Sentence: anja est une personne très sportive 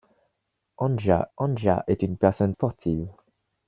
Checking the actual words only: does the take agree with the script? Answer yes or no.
no